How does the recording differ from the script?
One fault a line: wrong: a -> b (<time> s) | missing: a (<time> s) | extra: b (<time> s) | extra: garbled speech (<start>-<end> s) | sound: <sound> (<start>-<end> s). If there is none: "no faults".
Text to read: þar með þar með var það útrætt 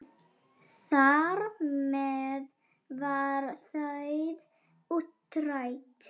missing: þar með (2.5 s)